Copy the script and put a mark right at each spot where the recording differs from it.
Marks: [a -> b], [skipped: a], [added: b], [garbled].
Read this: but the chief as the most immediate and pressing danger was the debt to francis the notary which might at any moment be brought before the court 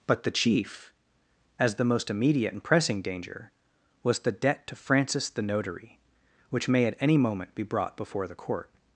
but the chief as the most immediate and pressing danger was the debt to francis the notary which [might -> may] at any moment be brought before the court